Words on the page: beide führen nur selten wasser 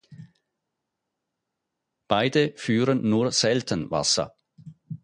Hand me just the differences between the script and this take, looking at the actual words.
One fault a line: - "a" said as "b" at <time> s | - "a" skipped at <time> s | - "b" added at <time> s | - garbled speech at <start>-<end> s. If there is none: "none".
none